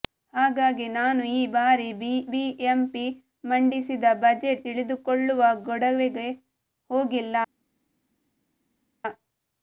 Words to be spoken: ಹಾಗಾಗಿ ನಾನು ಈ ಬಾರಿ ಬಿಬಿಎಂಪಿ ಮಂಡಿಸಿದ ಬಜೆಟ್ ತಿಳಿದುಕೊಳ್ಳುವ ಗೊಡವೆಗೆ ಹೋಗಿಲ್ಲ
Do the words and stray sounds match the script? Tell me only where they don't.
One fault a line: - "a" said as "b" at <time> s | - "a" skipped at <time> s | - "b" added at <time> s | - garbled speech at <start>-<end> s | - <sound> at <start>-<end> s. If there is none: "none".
none